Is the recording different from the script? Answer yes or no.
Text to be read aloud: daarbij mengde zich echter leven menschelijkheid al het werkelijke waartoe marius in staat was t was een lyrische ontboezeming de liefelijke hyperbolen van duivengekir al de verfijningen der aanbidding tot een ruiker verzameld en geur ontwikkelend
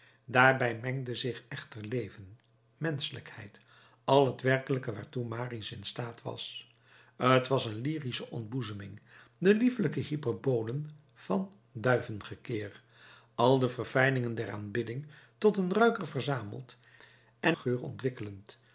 no